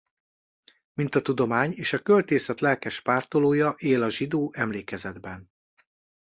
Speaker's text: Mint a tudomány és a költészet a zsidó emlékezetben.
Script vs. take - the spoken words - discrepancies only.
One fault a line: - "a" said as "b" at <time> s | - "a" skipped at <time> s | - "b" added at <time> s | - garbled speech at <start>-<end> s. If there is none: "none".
- "lelkes pártolója él" added at 2.6 s